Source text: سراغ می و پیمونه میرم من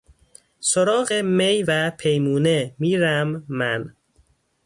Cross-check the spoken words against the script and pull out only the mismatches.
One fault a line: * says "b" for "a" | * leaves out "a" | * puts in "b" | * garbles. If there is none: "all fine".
all fine